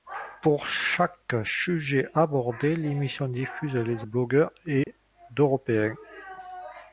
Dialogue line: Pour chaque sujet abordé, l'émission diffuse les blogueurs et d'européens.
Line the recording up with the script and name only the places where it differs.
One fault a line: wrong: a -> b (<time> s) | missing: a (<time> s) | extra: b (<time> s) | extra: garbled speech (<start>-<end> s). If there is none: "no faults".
no faults